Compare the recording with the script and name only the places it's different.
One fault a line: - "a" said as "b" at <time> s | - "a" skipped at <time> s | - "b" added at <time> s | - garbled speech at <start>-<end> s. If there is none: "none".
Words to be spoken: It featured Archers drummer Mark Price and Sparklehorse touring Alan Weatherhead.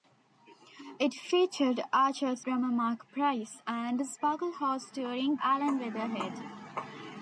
none